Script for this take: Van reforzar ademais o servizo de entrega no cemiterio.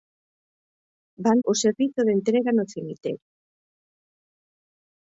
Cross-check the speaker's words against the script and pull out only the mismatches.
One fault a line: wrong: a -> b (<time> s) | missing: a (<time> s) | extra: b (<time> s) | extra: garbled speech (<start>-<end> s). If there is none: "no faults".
missing: reforzar ademais (1.4 s)